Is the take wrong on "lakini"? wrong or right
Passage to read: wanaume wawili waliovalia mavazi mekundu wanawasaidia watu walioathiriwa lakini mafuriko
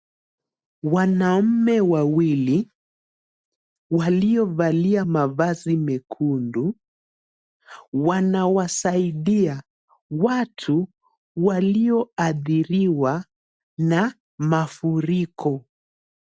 wrong